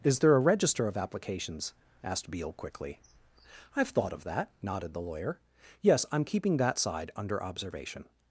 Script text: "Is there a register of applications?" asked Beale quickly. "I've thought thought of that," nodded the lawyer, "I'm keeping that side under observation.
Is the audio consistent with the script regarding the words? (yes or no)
no